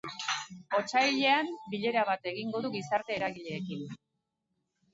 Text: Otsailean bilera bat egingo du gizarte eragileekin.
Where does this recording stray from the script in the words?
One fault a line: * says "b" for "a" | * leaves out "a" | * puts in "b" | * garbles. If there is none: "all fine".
all fine